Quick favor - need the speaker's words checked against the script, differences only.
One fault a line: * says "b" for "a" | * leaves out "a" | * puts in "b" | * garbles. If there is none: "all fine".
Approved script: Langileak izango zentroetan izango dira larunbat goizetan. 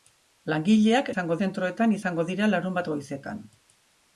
all fine